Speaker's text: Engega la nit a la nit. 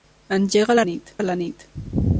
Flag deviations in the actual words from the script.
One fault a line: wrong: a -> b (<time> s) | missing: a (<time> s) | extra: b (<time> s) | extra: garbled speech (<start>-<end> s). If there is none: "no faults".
no faults